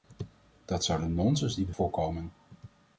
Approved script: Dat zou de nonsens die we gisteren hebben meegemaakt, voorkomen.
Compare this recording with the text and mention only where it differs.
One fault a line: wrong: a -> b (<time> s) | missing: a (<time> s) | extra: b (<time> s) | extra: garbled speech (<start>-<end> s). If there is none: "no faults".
missing: gisteren hebben meegemaakt (1.7 s)